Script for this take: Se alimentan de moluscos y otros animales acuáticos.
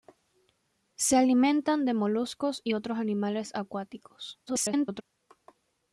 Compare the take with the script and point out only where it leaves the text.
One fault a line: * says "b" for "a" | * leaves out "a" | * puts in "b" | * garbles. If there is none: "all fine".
* garbles